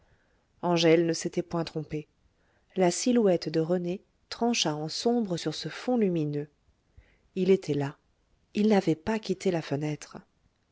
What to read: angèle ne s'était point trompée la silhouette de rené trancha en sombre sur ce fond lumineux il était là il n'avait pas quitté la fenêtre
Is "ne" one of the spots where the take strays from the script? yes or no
no